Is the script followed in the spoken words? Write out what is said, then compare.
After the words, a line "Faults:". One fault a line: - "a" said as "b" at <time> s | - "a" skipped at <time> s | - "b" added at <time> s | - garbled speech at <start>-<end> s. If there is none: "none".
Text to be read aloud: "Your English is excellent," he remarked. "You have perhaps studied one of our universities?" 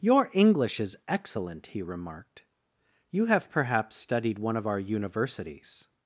"Your English is excellent," he remarked. "You have perhaps studied one of our universities?"
Faults:
none